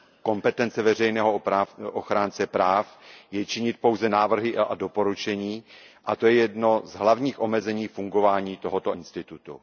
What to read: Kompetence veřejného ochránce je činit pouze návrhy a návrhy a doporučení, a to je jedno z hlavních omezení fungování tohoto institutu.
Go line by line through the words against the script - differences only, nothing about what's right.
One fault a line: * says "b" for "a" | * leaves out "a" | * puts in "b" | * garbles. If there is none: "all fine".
* puts in "práv"
* leaves out "návrhy a"